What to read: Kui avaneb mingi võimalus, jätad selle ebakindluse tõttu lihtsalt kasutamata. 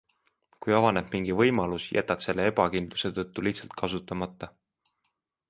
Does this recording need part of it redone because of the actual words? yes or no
no